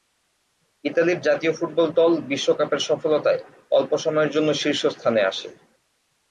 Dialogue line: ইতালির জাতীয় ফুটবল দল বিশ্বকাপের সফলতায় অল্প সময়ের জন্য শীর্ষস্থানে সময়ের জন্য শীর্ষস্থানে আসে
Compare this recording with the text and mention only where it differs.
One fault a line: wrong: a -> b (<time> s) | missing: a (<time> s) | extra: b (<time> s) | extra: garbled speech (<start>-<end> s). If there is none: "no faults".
missing: সময়ের জন্য শীর্ষস্থানে (5.2 s)